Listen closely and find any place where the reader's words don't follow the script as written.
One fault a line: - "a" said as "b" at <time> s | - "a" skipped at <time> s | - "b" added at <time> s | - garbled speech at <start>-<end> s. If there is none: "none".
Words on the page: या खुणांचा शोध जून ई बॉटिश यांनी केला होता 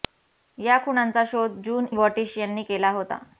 - "ई" skipped at 1.9 s